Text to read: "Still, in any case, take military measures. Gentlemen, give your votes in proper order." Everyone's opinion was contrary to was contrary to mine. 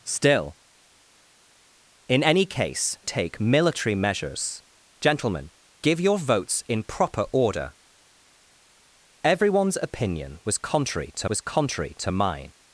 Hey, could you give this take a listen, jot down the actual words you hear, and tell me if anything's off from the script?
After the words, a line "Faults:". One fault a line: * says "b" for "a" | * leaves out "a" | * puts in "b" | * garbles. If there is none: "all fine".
"Still, in any case, take military measures. Gentlemen, give your votes in proper order." Everyone's opinion was contrary to was contrary to mine.
Faults:
all fine